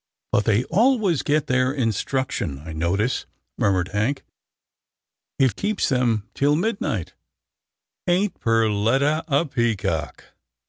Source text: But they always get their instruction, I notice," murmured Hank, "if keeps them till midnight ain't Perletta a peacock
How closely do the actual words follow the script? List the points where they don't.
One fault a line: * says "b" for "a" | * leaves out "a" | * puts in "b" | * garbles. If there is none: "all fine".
all fine